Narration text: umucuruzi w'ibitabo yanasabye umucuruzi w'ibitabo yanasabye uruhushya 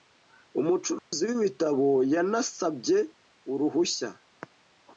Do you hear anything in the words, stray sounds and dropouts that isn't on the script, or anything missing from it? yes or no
yes